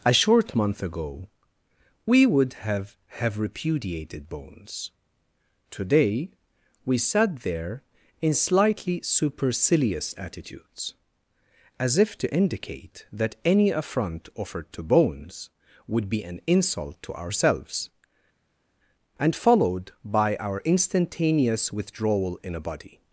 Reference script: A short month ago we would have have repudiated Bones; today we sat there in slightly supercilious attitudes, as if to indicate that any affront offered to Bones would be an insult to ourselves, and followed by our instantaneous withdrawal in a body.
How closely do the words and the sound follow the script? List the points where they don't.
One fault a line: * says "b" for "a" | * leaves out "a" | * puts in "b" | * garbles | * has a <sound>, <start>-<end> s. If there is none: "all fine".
all fine